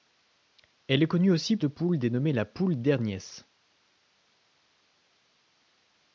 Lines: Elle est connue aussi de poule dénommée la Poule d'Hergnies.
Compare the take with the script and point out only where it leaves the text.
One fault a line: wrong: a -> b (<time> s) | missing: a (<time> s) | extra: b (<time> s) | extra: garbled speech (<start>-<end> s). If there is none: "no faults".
no faults